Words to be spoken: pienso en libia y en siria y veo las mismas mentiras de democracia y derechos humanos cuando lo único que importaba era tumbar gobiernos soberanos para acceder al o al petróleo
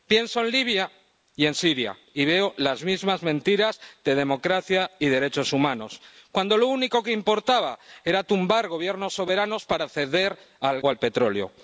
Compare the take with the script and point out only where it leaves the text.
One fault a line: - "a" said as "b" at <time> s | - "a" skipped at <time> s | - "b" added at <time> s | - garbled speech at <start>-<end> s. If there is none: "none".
none